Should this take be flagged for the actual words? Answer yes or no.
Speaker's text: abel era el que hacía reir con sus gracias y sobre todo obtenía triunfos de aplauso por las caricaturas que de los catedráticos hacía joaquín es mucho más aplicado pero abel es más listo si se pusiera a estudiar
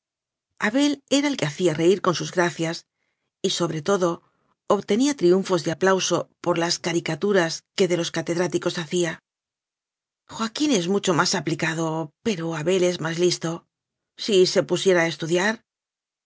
no